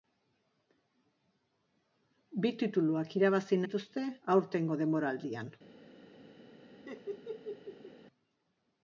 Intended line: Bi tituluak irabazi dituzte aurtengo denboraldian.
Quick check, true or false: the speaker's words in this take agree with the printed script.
true